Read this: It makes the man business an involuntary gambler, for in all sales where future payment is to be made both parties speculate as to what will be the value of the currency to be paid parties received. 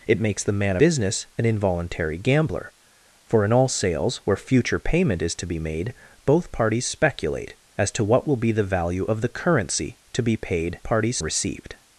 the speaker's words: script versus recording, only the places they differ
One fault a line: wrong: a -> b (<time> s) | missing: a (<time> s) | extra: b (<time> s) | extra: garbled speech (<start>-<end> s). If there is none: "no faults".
no faults